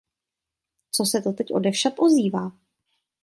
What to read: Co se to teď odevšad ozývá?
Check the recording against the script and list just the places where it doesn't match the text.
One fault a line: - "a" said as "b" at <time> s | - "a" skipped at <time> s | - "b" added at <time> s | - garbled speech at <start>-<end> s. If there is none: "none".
none